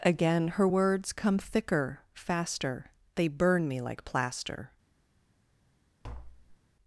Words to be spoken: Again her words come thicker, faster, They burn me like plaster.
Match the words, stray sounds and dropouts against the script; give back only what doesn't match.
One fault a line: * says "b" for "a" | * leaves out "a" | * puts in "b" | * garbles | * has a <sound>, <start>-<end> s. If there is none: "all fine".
* has a tap, 6.0-6.6 s